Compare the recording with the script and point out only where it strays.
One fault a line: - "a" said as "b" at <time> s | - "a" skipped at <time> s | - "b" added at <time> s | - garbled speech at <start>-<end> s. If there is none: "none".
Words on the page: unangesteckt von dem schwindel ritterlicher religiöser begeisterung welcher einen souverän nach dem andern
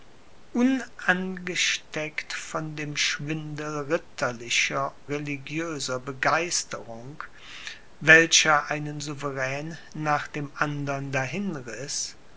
none